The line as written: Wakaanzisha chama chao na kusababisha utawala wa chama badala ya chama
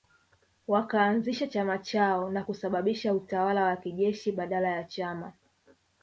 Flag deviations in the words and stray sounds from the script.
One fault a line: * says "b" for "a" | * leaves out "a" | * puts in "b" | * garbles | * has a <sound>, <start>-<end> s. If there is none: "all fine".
* says "kijeshi" for "chama"